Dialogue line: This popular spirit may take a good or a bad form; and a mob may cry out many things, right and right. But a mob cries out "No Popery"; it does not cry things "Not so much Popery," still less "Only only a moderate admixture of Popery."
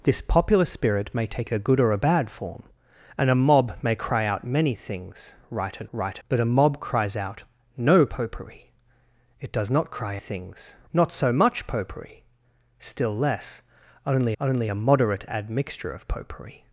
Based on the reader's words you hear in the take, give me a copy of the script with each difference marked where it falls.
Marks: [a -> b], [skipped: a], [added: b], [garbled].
This popular spirit may take a good or a bad form; and a mob may cry out many things, right and right. But a mob cries out "No Popery"; it does not cry things "Not so much Popery," still less "Only only a moderate admixture of Popery."